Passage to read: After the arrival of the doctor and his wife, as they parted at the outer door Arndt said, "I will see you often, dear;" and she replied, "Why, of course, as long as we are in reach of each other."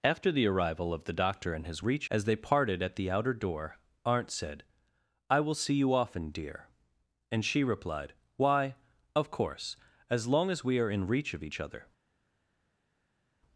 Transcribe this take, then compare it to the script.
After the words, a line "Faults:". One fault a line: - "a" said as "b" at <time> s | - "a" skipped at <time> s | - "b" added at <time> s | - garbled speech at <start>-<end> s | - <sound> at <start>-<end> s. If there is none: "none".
After the arrival of the doctor and his reach, as they parted at the outer door Arndt said, "I will see you often, dear;" and she replied, "Why, of course, as long as we are in reach of each other."
Faults:
- "wife" said as "reach" at 1.8 s